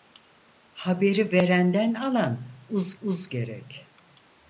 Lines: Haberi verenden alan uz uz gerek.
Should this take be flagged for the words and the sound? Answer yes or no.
no